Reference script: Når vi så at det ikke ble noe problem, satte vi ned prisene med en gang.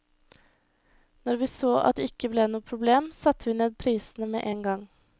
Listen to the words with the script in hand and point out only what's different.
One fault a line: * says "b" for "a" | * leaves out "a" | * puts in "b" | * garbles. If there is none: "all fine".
all fine